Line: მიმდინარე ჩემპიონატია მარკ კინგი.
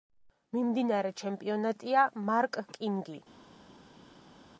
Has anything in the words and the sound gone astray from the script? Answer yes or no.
no